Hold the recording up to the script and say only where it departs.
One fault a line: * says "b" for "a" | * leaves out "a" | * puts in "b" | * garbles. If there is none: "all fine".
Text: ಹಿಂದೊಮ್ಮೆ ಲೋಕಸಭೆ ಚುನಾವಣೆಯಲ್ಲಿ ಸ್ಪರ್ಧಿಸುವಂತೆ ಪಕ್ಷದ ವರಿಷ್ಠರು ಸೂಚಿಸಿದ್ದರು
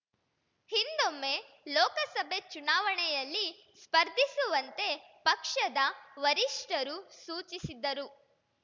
all fine